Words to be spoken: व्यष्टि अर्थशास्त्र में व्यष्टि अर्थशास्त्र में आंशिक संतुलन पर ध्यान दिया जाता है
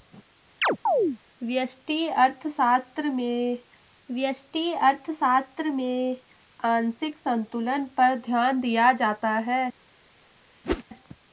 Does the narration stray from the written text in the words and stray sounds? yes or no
yes